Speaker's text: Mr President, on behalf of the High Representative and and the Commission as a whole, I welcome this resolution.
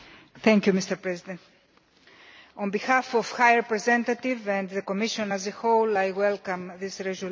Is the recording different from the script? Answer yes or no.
yes